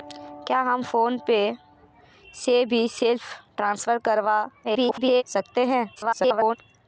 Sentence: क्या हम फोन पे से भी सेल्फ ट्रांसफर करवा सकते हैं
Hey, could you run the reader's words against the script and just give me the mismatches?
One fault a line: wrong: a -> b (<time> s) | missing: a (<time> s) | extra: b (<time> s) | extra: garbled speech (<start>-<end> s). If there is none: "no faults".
extra: garbled speech (4.6-5.2 s)
extra: garbled speech (6.0-6.6 s)